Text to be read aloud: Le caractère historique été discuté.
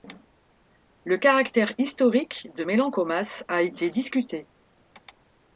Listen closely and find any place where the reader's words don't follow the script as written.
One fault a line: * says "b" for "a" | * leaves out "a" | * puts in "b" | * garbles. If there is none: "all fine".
* puts in "de Mélancomas a"